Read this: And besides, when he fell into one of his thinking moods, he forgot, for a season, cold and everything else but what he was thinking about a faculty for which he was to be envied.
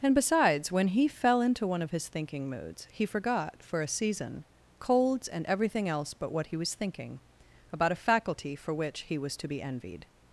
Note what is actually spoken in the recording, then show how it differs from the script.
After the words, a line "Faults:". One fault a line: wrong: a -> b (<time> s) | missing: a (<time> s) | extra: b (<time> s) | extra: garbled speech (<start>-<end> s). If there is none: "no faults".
And besides, when he fell into one of his thinking moods, he forgot, for a season, colds and everything else but what he was thinking about a faculty for which he was to be envied.
Faults:
wrong: cold -> colds (4.8 s)